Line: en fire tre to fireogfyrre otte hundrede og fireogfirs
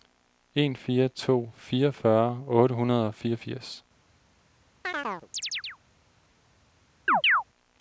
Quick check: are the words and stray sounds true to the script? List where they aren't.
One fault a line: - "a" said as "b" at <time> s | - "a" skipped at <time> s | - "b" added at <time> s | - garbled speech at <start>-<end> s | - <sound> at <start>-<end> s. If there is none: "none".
- "tre" skipped at 1.1 s
- chirp at 4.8-5.8 s
- chirp at 7.1-7.4 s